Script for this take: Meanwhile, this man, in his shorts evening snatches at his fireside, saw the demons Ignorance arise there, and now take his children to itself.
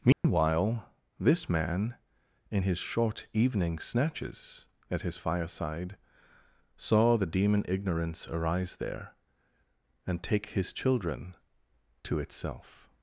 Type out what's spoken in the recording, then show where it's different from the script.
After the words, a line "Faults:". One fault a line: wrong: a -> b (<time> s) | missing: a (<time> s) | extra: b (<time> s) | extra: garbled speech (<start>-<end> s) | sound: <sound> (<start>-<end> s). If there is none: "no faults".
Meanwhile, this man, in his short evening snatches at his fireside, saw the demon Ignorance arise there, and take his children to itself.
Faults:
sound: dropout (0.1-0.2 s)
wrong: shorts -> short (2.8 s)
wrong: demons -> demon (7.2 s)
missing: now (10.2 s)